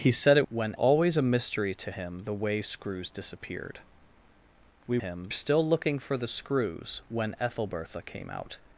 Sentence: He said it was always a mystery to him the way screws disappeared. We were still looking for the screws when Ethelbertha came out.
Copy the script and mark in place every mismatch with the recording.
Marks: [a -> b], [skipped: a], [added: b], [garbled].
He said it [was -> when] always a mystery to him the way screws disappeared. We [were -> him] still looking for the screws when Ethelbertha came out.